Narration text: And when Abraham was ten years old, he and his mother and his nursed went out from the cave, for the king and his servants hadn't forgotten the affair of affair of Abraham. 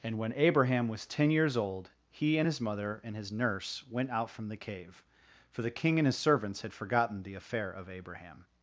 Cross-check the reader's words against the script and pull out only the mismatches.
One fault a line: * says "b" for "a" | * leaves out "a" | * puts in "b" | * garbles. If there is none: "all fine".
* says "nurse" for "nursed"
* says "had" for "hadn't"
* leaves out "affair of"